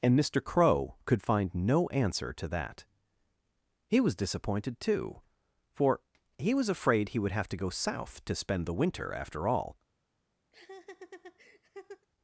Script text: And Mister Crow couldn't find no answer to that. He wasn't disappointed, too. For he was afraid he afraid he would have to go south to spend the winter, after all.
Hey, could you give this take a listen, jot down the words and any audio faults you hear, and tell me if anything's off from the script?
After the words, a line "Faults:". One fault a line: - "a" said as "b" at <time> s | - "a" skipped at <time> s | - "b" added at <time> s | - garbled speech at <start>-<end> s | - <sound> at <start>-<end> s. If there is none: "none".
And Mister Crow could find no answer to that. He was disappointed, too. For he was afraid he would have to go south to spend the winter, after all.
Faults:
- "couldn't" said as "could" at 1.1 s
- "wasn't" said as "was" at 4.0 s
- "afraid he" skipped at 7.2 s
- laugh at 10.5-12.1 s